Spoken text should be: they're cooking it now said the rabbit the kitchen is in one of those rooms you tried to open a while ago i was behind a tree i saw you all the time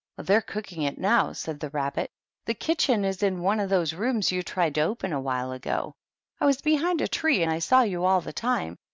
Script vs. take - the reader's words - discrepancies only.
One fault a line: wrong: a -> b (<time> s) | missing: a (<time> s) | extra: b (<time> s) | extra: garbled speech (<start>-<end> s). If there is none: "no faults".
no faults